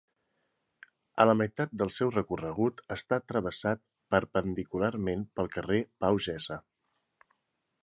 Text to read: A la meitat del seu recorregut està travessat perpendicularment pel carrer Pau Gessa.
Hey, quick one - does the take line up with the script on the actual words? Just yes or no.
yes